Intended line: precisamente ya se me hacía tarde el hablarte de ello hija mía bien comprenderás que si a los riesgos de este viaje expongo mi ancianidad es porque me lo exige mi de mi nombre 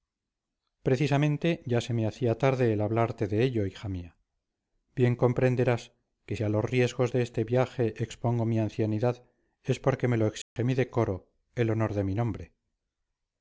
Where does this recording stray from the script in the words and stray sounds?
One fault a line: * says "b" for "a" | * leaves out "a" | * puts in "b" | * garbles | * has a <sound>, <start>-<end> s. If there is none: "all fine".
* has a dropout, 10.4-10.6 s
* puts in "decoro el honor"